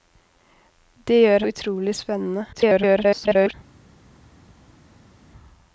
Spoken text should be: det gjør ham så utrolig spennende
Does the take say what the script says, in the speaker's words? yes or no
no